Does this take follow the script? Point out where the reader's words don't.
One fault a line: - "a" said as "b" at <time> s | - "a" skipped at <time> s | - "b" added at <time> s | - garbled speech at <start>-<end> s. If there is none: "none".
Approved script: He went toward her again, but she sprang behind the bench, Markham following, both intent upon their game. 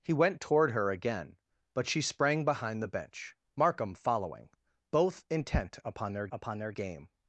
- "upon their" added at 6.3 s